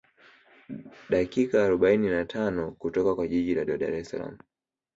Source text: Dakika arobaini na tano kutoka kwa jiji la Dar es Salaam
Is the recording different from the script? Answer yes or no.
yes